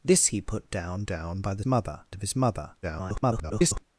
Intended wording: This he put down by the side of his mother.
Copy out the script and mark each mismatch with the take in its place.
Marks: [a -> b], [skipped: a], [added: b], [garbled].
This he put down [added: down] by the [side -> mother] of his mother. [garbled]